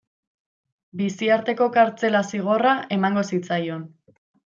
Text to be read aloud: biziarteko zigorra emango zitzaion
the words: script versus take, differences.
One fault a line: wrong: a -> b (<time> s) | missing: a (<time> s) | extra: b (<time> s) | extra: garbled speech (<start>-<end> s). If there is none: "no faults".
extra: kartzela (1.8 s)